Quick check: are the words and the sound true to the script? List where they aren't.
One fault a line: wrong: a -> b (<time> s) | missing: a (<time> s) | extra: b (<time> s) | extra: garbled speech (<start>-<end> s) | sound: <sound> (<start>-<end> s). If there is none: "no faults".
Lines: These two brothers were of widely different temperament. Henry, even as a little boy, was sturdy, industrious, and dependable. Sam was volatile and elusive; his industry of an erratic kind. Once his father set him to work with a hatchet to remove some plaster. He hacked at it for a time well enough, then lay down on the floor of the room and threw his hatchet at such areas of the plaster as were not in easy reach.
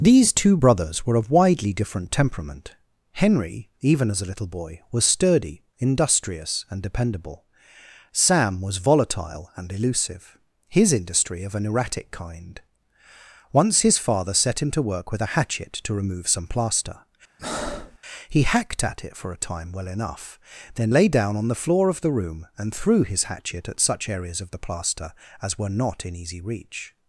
sound: breath (17.4-18.0 s)